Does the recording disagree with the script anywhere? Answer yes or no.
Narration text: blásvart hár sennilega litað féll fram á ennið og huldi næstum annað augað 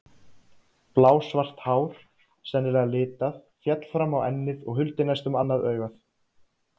no